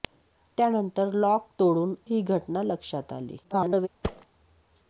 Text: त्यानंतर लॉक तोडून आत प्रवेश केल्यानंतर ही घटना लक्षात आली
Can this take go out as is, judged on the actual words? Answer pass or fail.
fail